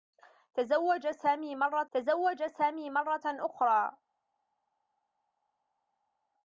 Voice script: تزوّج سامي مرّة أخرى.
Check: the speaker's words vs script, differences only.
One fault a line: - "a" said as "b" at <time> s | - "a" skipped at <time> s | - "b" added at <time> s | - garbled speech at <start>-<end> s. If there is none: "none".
- "تزوّج سامي مرّة" added at 1.9 s